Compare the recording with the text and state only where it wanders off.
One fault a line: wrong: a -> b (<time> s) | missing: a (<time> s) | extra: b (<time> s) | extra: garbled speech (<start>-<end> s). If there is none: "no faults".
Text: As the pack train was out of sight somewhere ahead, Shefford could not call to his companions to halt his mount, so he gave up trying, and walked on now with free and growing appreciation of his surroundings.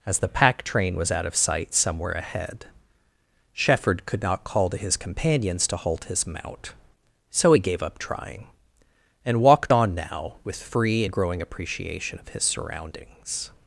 no faults